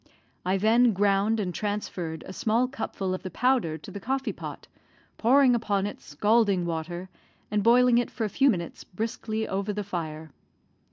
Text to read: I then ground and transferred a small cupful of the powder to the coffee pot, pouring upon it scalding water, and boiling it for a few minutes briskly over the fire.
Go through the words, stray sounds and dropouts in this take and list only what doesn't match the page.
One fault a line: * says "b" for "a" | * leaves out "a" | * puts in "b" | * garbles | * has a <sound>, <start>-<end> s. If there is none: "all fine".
all fine